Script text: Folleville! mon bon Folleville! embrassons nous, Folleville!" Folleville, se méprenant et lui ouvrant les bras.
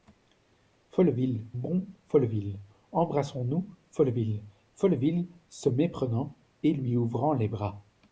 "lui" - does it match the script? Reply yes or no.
yes